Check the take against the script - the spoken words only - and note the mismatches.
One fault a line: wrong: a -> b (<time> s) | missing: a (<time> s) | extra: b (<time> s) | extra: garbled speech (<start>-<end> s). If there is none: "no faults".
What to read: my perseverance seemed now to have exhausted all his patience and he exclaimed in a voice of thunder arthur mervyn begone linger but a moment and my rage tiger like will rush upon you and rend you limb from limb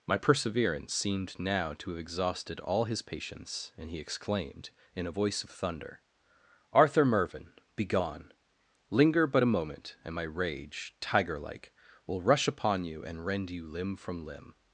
no faults